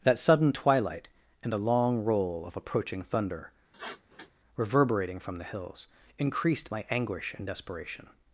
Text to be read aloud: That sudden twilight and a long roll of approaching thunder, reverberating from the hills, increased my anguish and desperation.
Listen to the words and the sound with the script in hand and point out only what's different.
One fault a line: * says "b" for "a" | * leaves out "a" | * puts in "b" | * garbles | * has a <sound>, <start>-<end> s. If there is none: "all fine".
* has a sniff, 3.7-4.3 s